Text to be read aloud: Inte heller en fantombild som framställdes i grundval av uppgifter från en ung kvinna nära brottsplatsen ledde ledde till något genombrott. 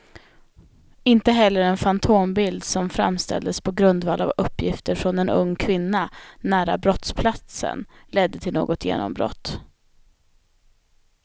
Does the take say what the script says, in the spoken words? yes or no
no